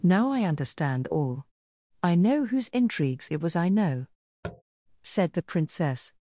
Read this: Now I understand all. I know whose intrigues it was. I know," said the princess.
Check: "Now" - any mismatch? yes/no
no